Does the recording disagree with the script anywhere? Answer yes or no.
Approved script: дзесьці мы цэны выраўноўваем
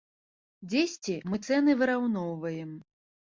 no